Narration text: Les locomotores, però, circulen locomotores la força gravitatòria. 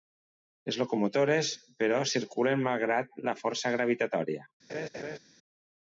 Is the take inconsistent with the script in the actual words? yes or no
yes